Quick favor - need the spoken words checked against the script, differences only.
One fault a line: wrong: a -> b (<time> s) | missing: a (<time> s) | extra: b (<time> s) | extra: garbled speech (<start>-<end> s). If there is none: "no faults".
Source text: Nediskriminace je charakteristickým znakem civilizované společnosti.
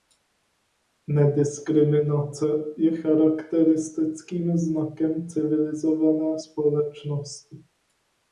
no faults